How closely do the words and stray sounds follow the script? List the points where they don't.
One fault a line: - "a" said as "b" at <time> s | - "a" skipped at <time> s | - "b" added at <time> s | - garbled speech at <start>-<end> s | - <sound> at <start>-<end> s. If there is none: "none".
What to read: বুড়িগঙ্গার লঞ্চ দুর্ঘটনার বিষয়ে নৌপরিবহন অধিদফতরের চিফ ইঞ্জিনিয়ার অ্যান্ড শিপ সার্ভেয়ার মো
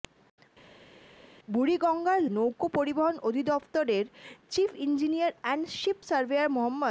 - "লঞ্চ দুর্ঘটনার বিষয়ে" skipped at 2.2 s